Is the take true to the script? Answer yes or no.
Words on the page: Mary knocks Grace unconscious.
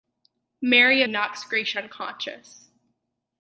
yes